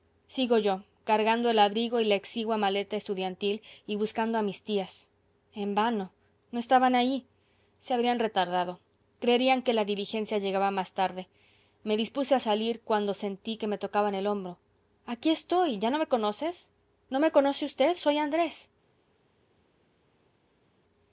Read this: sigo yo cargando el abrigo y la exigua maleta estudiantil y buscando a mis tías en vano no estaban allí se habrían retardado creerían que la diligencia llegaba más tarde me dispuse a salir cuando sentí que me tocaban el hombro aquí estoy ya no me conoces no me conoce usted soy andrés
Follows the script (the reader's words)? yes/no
yes